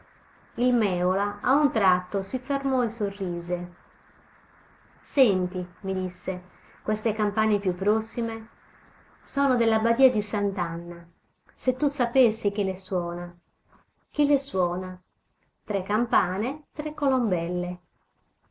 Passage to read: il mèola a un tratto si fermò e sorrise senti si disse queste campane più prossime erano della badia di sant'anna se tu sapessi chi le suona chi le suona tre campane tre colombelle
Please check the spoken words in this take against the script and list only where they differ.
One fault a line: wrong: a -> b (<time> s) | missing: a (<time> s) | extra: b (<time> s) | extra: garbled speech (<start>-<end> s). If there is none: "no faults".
wrong: si -> mi (5.8 s)
wrong: erano -> sono (9.2 s)